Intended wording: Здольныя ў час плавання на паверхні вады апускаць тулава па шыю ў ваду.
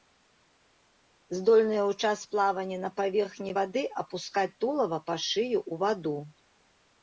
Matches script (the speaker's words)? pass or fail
pass